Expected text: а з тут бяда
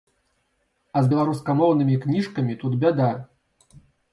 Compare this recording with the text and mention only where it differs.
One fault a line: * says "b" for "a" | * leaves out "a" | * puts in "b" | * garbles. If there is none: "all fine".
* puts in "беларускамоўнымі кніжкамі"